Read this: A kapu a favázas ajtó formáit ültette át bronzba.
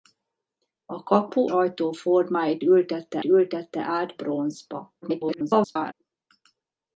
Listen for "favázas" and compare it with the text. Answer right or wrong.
wrong